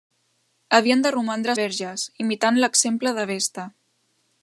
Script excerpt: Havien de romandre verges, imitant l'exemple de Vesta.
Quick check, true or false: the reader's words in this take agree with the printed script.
true